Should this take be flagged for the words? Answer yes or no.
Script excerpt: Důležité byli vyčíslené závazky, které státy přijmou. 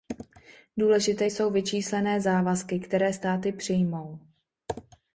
yes